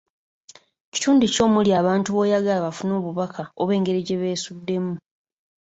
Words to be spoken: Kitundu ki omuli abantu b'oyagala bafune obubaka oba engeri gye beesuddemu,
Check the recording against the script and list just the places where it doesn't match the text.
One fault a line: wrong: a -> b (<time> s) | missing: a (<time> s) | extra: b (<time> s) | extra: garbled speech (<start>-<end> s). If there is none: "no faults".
no faults